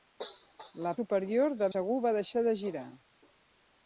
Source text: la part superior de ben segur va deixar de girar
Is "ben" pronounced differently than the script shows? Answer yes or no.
yes